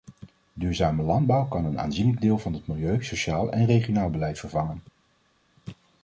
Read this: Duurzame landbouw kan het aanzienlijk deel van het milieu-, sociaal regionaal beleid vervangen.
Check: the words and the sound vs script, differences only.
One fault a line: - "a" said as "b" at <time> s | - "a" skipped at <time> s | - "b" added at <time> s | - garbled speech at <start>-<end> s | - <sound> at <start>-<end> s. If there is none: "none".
- "het" said as "een" at 1.6 s
- "en" added at 3.5 s